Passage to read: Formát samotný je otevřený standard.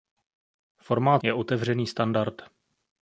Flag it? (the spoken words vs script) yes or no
yes